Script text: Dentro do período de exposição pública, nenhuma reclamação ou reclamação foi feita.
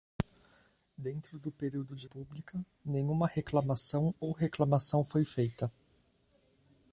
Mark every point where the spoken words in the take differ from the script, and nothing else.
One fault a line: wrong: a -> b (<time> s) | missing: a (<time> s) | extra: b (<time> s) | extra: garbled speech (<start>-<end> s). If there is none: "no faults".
missing: exposição (2.1 s)